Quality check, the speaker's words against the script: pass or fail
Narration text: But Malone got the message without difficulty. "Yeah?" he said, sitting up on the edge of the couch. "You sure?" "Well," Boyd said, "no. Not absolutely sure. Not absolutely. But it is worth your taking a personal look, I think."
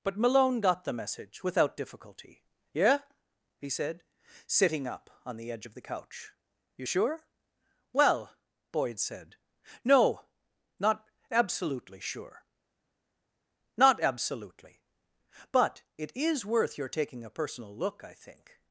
pass